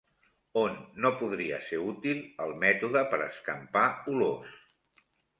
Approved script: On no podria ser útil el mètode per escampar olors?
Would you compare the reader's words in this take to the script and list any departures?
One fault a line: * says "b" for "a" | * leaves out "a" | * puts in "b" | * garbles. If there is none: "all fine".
all fine